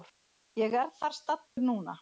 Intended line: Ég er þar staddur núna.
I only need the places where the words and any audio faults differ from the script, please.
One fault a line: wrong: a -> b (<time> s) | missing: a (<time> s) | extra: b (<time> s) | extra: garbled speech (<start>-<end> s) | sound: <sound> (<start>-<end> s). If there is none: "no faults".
sound: dropout (1.5-1.6 s)